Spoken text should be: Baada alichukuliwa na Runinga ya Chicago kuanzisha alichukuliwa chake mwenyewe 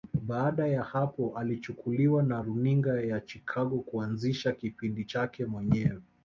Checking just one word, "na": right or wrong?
right